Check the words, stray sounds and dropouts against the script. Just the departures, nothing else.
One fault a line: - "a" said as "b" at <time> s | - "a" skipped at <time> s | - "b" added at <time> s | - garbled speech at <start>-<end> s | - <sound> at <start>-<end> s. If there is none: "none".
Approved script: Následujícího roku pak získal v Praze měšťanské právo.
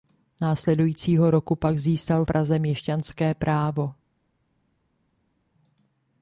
- "v" skipped at 2.2 s